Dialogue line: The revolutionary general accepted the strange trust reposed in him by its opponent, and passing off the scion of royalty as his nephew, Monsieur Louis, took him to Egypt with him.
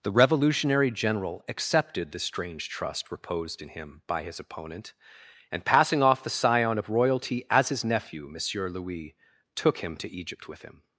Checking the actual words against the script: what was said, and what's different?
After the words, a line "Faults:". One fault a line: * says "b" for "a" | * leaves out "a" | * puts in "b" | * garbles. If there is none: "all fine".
The revolutionary general accepted the strange trust reposed in him by his opponent, and passing off the scion of royalty as his nephew, Monsieur Louis, took him to Egypt with him.
Faults:
* says "his" for "its"